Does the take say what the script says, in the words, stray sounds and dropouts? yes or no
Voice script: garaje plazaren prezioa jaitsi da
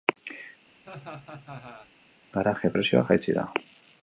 no